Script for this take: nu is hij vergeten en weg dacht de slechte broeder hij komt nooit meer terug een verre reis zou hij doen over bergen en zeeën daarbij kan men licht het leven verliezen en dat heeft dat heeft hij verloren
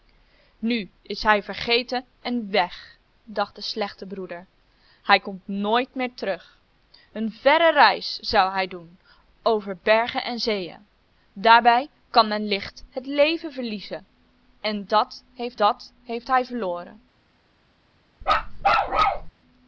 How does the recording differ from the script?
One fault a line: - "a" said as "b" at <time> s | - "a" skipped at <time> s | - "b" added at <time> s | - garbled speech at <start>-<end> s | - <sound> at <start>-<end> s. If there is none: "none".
- bark at 18.2-19.3 s